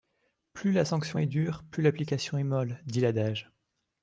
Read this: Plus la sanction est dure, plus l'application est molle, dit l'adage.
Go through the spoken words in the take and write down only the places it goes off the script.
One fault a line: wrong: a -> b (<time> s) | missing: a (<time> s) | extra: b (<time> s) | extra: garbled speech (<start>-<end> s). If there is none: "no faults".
no faults